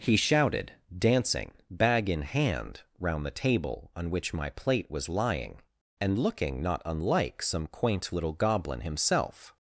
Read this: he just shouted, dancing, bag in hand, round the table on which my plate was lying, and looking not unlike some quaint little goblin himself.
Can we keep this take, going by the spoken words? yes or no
no